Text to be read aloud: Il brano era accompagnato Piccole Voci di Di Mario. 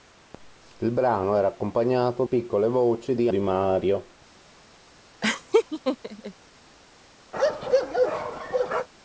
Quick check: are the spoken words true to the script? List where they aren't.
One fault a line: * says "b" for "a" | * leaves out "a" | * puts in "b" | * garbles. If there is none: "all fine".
all fine